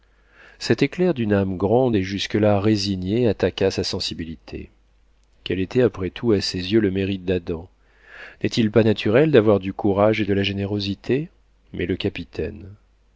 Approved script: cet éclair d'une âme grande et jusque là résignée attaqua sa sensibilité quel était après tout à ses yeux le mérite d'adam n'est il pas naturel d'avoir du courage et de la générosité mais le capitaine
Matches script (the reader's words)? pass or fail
pass